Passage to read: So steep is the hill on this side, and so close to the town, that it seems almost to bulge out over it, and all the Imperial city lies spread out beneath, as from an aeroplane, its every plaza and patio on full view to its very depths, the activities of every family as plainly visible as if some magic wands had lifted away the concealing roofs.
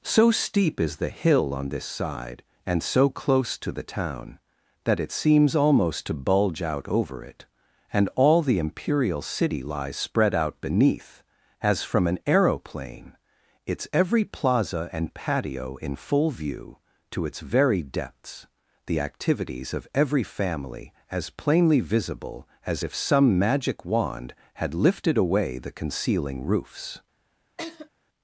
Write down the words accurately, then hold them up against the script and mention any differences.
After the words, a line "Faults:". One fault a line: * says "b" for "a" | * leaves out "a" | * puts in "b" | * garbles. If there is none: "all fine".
So steep is the hill on this side, and so close to the town, that it seems almost to bulge out over it, and all the Imperial city lies spread out beneath, as from an aeroplane, its every plaza and patio in full view to its very depths, the activities of every family as plainly visible as if some magic wand had lifted away the concealing roofs.
Faults:
* says "in" for "on"
* says "wand" for "wands"